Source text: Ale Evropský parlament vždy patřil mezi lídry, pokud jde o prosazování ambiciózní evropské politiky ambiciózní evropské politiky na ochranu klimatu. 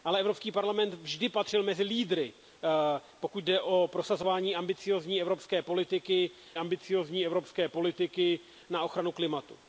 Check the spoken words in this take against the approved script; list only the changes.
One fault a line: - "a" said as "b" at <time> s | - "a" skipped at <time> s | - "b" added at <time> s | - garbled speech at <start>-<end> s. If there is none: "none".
none